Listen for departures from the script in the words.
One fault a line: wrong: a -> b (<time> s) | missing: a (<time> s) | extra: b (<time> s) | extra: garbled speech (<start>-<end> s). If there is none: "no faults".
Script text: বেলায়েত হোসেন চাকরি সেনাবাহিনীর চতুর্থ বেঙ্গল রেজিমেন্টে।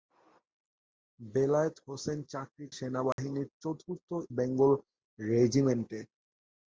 no faults